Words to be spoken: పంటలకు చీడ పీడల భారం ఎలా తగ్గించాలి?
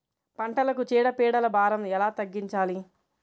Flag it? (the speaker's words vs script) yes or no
no